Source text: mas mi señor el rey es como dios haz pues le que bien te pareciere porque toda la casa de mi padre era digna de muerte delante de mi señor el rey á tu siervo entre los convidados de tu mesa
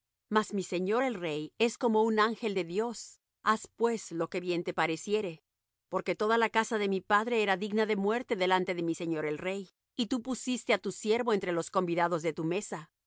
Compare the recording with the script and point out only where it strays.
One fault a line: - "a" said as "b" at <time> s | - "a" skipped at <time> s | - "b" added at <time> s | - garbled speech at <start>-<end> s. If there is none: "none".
- "un ángel de" added at 2.0 s
- "le" said as "lo" at 4.1 s
- "y tú pusiste" added at 10.0 s